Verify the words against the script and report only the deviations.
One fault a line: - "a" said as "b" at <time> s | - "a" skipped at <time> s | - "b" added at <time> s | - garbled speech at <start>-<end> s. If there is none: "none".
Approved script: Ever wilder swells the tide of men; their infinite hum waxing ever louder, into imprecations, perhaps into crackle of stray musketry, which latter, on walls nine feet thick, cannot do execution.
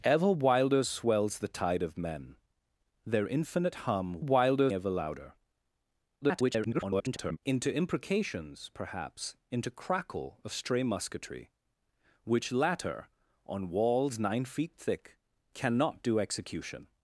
- "waxing" said as "wilder" at 4.2 s
- garbled speech at 6.2-7.4 s